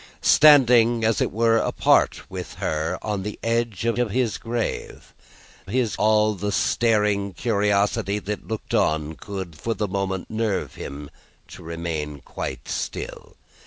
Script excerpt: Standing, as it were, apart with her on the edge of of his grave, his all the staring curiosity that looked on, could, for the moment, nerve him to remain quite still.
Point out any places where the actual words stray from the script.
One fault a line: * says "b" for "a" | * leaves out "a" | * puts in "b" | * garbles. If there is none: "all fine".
all fine